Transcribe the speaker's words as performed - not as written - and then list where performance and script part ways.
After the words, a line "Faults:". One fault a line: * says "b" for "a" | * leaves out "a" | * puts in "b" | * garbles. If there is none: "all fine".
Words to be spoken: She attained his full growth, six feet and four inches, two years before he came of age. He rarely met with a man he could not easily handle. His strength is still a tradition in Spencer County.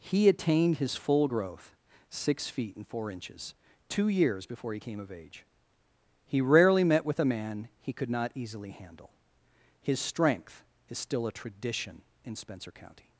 He attained his full growth, six feet and four inches, two years before he came of age. He rarely met with a man he could not easily handle. His strength is still a tradition in Spencer County.
Faults:
* says "He" for "She"